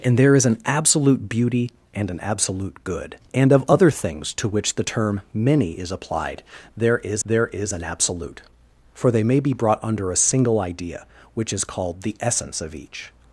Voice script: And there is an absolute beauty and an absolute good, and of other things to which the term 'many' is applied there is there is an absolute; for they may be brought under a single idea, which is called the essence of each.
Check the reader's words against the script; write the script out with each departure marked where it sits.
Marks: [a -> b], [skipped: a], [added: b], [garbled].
And there is an absolute beauty and an absolute good, and of other things to which the term 'many' is applied there is there is an absolute; for they may be brought under a single idea, which is called the essence of each.